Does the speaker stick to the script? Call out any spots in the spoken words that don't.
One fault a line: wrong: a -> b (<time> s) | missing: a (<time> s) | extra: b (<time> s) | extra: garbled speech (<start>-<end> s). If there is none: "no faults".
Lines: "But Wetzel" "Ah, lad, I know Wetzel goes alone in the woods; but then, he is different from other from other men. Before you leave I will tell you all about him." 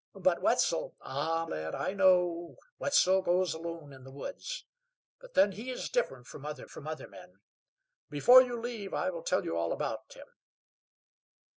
no faults